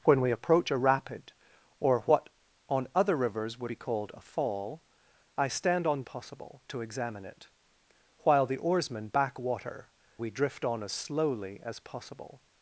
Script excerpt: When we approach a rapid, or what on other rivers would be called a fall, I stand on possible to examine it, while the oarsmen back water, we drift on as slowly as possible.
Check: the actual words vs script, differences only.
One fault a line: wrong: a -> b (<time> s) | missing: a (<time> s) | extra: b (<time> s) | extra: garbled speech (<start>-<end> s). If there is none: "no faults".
no faults